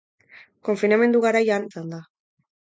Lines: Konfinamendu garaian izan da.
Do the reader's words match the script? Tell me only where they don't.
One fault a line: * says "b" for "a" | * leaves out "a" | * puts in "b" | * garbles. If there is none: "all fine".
all fine